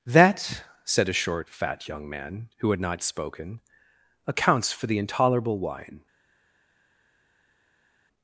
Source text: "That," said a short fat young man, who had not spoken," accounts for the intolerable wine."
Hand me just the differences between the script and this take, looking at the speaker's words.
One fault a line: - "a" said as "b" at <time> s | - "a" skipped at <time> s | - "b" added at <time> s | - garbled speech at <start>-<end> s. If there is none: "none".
none